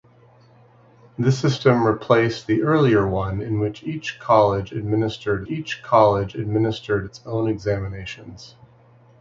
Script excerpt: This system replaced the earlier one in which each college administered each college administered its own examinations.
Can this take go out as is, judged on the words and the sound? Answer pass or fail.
pass